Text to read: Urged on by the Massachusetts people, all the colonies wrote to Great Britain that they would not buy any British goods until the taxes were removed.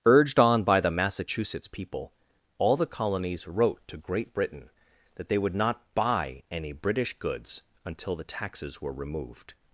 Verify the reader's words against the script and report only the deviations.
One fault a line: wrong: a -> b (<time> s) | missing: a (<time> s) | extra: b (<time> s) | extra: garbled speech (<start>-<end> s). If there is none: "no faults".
no faults